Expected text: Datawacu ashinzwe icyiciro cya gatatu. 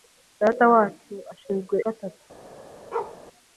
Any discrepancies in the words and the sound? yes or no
yes